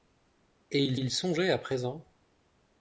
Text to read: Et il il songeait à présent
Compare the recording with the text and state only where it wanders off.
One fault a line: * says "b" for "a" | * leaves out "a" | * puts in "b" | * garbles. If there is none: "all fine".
all fine